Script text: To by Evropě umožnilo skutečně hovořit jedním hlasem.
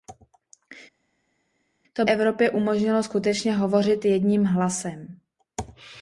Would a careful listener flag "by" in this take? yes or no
yes